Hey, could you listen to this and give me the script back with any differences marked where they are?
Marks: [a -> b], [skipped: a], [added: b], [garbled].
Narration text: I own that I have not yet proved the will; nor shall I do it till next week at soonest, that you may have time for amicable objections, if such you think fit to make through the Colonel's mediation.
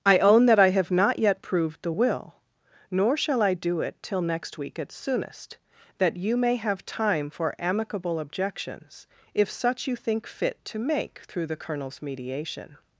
I own that I have not yet proved the will; nor shall I do it till next week at soonest, that you may have time for amicable objections, if such you think fit to make through the Colonel's mediation.